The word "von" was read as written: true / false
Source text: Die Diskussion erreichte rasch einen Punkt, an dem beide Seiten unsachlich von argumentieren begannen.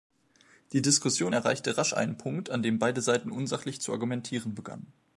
false